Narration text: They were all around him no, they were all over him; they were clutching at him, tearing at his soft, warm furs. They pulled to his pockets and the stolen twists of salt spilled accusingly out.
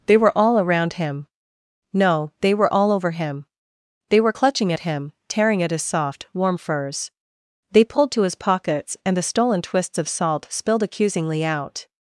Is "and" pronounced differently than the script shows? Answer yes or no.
no